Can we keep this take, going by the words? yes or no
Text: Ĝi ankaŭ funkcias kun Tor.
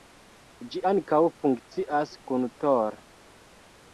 yes